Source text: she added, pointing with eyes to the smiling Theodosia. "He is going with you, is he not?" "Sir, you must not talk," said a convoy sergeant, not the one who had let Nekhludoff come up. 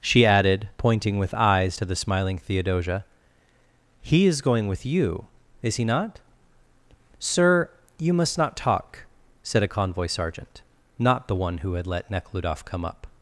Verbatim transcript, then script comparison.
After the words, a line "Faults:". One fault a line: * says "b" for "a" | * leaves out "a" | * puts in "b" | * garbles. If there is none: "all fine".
she added, pointing with eyes to the smiling Theodosia. "He is going with you, is he not?" "Sir, you must not talk," said a convoy sergeant, not the one who had let Nekhludoff come up.
Faults:
all fine